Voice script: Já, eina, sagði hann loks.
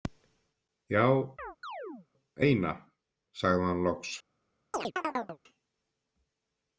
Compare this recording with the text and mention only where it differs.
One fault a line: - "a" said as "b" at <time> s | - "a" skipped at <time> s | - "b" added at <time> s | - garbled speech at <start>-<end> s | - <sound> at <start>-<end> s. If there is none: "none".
- chirp at 1.4-2.1 s
- chirp at 4.7-5.4 s